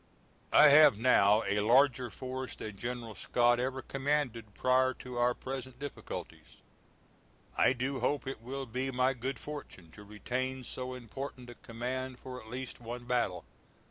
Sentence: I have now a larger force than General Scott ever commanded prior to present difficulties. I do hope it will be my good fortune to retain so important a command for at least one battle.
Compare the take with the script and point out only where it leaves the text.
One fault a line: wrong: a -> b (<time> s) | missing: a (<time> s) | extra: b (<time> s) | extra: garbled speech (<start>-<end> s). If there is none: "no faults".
extra: our (5.2 s)